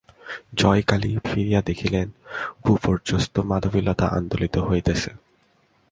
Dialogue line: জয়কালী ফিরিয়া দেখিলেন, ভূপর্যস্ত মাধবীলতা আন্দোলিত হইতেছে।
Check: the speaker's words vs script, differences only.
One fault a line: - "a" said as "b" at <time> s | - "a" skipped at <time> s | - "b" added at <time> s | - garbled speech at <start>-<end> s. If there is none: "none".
none